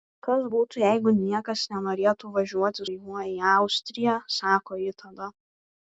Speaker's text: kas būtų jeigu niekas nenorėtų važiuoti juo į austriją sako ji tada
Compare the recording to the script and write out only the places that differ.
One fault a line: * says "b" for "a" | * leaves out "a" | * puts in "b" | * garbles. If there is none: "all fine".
all fine